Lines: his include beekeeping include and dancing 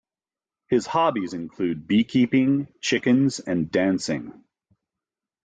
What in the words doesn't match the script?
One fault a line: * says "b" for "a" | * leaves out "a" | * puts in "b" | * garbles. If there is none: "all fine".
* puts in "hobbies"
* says "chickens" for "include"